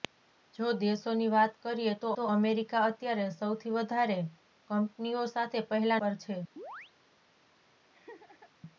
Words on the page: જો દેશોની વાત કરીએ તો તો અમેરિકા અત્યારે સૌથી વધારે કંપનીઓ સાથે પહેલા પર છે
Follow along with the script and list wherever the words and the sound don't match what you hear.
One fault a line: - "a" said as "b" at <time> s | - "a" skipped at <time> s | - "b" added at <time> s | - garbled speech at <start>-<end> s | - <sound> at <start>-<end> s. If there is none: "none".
- chirp at 6.6-6.9 s
- laugh at 7.9-8.5 s